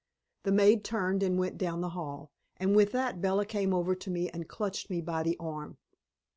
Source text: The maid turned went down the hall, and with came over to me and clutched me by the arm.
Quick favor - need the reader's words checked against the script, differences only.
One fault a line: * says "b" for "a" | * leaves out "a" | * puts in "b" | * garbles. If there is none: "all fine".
* puts in "and"
* puts in "that Bella"